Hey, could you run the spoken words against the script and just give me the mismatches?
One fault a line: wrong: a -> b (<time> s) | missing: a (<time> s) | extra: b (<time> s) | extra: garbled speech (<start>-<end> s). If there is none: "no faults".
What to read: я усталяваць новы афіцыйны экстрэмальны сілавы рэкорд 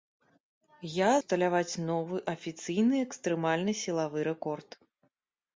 no faults